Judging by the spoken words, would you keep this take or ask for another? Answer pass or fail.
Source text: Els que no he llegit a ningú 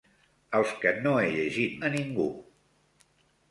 pass